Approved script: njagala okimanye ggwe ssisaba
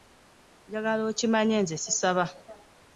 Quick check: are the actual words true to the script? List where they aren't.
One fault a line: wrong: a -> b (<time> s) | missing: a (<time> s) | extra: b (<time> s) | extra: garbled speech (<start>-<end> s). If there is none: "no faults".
wrong: ggwe -> nze (1.6 s)